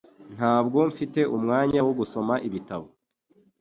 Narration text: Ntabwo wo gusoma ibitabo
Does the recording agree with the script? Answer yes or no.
no